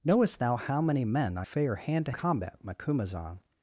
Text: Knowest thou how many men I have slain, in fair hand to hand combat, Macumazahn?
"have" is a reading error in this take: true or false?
true